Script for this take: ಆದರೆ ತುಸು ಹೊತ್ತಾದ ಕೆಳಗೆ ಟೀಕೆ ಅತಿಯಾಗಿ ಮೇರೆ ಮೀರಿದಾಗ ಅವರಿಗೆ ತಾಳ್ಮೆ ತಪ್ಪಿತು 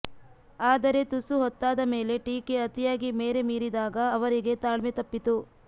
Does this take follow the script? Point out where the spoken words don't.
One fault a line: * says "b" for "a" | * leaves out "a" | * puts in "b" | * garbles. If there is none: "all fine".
* says "ಮೇಲೆ" for "ಕೆಳಗೆ"